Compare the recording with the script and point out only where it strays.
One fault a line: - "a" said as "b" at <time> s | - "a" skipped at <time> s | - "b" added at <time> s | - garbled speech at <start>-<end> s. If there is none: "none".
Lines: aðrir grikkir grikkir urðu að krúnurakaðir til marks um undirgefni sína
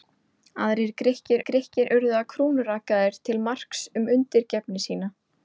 none